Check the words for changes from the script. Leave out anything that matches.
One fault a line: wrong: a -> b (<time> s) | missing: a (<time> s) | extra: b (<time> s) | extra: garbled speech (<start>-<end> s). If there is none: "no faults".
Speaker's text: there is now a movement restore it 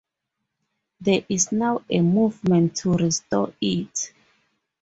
extra: to (2.8 s)